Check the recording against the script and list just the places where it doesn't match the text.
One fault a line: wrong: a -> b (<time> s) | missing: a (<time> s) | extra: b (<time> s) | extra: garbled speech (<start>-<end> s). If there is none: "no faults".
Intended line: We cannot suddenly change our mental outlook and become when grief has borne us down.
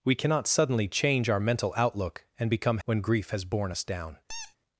no faults